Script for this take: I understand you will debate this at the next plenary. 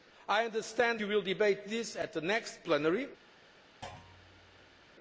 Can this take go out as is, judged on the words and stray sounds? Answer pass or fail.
fail